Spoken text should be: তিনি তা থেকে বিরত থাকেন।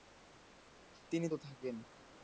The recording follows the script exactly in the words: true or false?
false